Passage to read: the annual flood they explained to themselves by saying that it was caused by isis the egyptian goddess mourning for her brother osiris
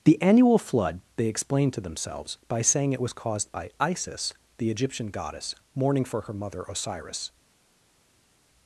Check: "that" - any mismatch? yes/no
yes